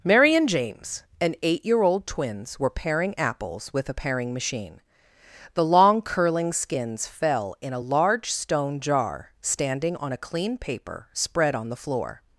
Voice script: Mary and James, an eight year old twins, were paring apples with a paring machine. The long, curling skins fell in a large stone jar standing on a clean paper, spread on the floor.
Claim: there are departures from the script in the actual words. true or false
false